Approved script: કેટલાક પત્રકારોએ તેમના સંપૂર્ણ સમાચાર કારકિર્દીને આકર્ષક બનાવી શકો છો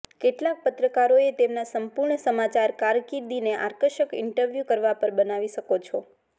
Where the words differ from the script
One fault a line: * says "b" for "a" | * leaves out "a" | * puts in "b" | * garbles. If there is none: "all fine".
* puts in "ઇન્ટરવ્યૂ કરવા પર"